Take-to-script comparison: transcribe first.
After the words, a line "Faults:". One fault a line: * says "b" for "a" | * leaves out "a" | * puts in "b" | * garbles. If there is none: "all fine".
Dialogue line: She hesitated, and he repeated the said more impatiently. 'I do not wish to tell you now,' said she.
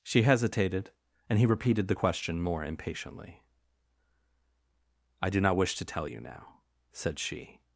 She hesitated, and he repeated the question more impatiently. 'I do not wish to tell you now,' said she.
Faults:
* says "question" for "said"